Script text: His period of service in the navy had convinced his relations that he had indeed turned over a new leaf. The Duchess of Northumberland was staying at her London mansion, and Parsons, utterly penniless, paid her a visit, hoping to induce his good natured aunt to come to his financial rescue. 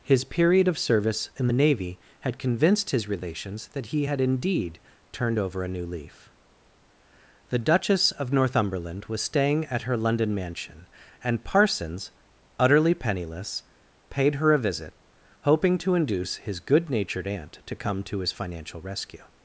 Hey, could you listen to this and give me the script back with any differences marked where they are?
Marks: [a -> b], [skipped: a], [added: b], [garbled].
His period of service in the navy had convinced his relations that he had indeed turned over a new leaf. The Duchess of Northumberland was staying at her London mansion, and Parsons, utterly penniless, paid her a visit, hoping to induce his good natured aunt to come to his financial rescue.